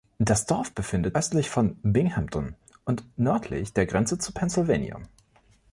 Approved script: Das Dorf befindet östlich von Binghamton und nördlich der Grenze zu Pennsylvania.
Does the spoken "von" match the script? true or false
true